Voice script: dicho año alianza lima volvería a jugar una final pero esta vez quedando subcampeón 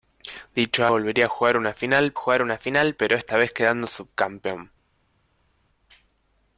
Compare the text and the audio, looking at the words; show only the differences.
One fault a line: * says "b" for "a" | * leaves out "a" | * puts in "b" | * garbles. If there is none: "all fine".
* says "volvería a jugar una final" for "año alianza lima volvería a"